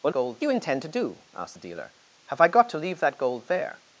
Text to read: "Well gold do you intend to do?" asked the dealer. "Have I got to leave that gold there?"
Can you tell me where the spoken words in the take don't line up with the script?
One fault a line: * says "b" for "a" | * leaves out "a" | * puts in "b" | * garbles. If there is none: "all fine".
all fine